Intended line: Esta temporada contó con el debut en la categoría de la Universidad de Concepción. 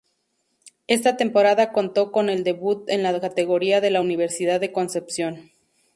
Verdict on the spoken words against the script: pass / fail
pass